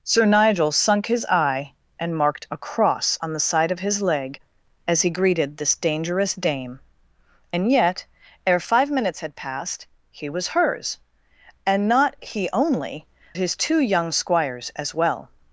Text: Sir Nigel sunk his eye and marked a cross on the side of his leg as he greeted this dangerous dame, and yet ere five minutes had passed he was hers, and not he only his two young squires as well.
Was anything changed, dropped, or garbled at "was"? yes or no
no